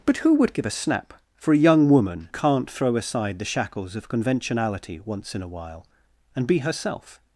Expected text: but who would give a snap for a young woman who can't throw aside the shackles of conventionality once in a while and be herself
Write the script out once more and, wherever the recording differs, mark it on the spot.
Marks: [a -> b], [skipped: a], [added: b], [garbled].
but who would give a snap for a young woman [skipped: who] can't throw aside the shackles of conventionality once in a while and be herself